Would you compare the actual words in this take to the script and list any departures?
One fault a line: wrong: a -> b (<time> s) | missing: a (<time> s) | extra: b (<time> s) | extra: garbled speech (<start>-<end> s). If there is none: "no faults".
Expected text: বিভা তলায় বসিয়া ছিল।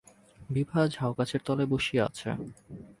extra: ঝাউগাছের (0.9 s)
wrong: ছিল -> আছে (2.0 s)